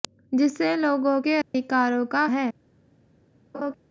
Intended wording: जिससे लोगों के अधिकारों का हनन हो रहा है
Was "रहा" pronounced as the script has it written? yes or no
no